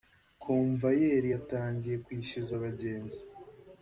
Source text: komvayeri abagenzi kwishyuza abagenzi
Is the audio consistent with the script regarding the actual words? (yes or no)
no